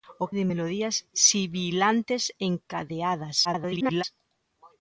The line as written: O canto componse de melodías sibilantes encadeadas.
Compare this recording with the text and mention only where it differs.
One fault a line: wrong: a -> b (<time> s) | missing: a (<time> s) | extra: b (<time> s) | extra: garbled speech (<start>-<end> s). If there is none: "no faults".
missing: canto componse (0.3 s)
extra: garbled speech (3.4-4.0 s)